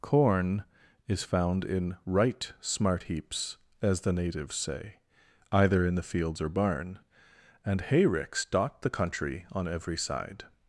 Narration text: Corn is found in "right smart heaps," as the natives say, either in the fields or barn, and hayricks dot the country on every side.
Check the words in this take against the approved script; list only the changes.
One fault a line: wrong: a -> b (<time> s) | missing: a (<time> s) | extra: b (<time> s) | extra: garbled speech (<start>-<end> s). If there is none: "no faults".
no faults